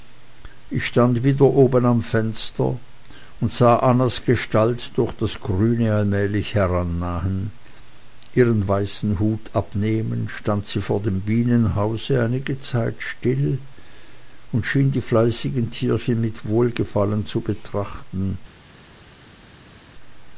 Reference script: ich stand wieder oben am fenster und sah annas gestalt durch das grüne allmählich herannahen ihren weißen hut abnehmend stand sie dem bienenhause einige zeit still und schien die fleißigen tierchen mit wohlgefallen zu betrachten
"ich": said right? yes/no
yes